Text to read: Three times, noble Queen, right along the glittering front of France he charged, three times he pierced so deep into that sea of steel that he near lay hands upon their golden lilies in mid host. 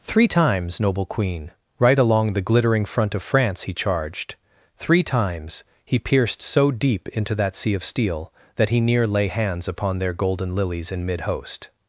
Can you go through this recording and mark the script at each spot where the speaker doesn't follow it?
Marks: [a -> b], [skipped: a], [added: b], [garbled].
Three times, noble Queen, right along the glittering front of France he charged, three times he pierced so deep into that sea of steel that he near lay hands upon their golden lilies in mid host.